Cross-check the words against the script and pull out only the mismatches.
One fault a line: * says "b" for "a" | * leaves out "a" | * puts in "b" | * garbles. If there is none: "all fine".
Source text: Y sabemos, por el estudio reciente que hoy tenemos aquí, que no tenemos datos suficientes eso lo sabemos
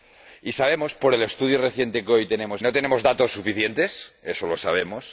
* leaves out "aquí que"